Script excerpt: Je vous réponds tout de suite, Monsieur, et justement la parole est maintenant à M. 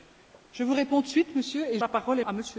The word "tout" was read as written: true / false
false